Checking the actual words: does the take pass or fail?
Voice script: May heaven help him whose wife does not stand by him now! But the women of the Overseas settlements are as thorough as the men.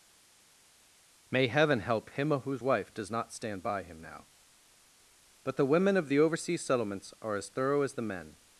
pass